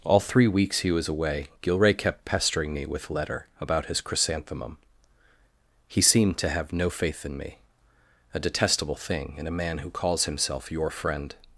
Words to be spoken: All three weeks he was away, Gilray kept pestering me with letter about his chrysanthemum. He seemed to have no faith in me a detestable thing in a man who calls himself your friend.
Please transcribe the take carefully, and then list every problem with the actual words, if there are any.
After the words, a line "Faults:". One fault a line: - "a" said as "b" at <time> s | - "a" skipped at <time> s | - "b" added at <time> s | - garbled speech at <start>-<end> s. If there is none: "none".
All three weeks he was away, Gilray kept pestering me with letter about his chrysanthemum. He seemed to have no faith in me a detestable thing in a man who calls himself your friend.
Faults:
none